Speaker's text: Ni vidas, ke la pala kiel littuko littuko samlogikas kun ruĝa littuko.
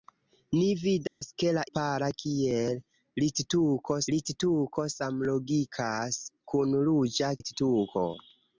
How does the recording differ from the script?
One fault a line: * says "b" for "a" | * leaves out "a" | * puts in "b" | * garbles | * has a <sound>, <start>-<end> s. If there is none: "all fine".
* has a dropout, 1.1-1.2 s